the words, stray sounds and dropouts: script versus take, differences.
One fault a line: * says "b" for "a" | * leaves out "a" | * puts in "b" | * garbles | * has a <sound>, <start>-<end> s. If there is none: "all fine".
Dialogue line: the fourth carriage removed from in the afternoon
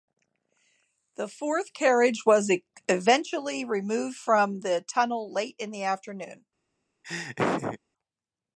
* puts in "was eventually"
* puts in "the tunnel late"
* has a laugh, 7.0-7.8 s